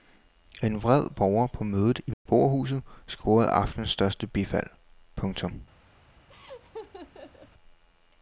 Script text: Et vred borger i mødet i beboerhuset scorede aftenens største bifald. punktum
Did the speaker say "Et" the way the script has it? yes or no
no